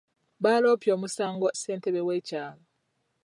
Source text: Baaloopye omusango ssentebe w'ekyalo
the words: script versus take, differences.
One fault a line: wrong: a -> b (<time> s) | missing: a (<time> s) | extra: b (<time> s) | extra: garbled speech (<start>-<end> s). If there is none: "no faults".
no faults